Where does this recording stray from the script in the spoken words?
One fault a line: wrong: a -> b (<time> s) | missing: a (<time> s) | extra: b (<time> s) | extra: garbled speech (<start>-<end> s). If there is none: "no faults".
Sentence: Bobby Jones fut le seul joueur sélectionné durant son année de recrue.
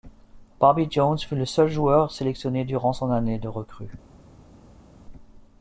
no faults